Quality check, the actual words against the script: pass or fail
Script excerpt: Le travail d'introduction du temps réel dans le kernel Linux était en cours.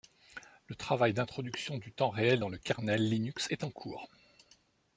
fail